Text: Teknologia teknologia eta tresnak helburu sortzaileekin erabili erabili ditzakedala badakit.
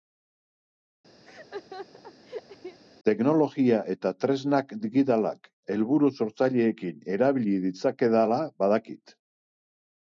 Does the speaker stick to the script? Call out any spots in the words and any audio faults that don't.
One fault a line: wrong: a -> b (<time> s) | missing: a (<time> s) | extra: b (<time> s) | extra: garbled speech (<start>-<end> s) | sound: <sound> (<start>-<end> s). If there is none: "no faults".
sound: laugh (1.2-2.8 s)
missing: teknologia (3.8 s)
extra: digitalak (4.8 s)
missing: erabili (7.5 s)